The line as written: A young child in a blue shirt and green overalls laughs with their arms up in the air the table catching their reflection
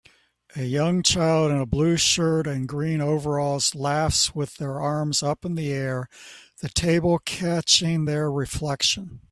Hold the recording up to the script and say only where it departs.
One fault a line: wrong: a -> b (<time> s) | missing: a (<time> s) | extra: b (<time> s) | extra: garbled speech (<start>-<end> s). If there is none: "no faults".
no faults